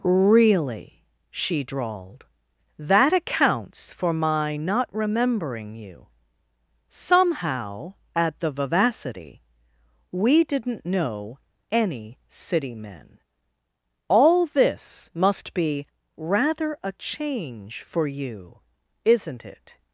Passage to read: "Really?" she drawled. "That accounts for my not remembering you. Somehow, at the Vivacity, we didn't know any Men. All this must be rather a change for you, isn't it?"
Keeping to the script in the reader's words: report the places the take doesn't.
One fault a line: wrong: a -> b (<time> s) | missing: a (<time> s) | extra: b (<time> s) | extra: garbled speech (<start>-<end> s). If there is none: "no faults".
extra: City (12.3 s)